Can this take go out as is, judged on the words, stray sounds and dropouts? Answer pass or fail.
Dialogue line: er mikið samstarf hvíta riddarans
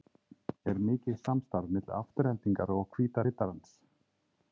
fail